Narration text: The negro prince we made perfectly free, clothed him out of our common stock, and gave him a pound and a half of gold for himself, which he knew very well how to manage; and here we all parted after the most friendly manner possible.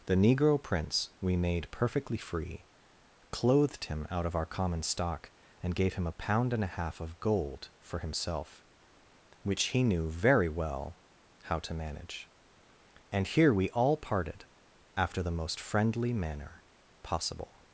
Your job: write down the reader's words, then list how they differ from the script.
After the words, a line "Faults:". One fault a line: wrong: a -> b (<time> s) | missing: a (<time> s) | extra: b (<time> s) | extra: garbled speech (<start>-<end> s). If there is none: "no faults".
The negro prince we made perfectly free, clothed him out of our common stock, and gave him a pound and a half of gold for himself, which he knew very well how to manage; and here we all parted after the most friendly manner possible.
Faults:
no faults